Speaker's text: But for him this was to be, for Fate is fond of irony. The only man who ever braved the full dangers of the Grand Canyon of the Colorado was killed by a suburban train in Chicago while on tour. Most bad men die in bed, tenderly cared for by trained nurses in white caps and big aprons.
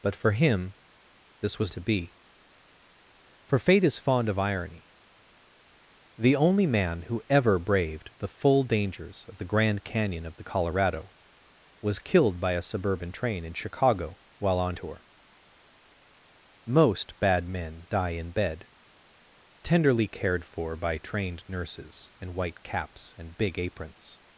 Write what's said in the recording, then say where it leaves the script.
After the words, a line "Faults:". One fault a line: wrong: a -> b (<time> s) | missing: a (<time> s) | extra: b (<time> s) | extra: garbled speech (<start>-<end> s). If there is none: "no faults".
But for him this was to be, for Fate is fond of irony. The only man who ever braved the full dangers of the Grand Canyon of the Colorado was killed by a suburban train in Chicago while on tour. Most bad men die in bed, tenderly cared for by trained nurses in white caps and big aprons.
Faults:
no faults